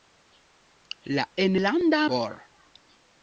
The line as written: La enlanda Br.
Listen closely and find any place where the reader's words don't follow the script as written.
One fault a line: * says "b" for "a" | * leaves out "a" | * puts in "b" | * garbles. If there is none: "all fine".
all fine